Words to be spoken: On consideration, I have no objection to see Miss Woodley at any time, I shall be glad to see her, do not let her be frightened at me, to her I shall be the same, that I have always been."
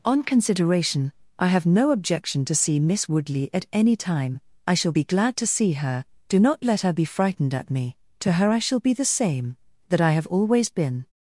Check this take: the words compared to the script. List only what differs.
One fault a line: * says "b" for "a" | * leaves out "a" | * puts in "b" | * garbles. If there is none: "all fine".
all fine